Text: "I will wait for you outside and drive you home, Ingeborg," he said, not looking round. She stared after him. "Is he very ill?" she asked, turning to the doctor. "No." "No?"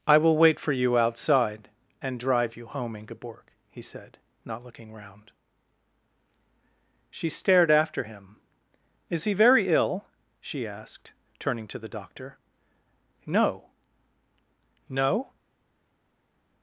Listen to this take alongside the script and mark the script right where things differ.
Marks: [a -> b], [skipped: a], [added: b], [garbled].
"I will wait for you outside and drive you home, Ingeborg," he said, not looking round. She stared after him. "Is he very ill?" she asked, turning to the doctor. "No." "No?"